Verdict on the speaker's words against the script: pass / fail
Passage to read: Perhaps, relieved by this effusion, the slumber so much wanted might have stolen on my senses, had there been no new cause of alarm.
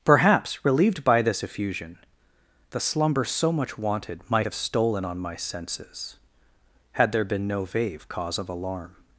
fail